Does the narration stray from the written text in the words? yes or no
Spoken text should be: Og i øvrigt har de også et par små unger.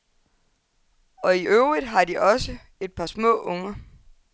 no